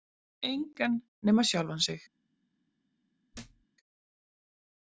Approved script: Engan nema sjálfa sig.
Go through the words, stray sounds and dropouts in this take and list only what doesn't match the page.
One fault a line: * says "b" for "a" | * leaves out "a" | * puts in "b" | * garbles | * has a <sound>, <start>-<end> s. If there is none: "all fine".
* has a thud, 3.3-3.7 s